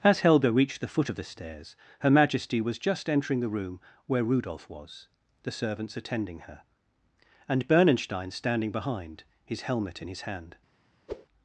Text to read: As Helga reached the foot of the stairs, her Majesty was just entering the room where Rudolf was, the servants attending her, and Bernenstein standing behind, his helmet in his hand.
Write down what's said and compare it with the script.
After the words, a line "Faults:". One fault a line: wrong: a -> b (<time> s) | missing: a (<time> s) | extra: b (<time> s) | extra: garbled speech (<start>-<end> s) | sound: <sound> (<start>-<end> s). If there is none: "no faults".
As Helga reached the foot of the stairs, her Majesty was just entering the room where Rudolf was, the servants attending her, and Bernenstein standing behind, his helmet in his hand.
Faults:
sound: whoosh (11.1-11.3 s)